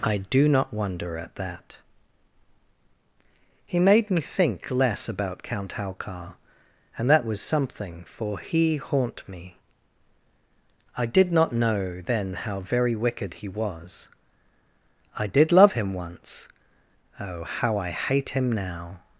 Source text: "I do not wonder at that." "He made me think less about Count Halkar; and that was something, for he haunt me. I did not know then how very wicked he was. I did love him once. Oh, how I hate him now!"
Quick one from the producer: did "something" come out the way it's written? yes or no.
yes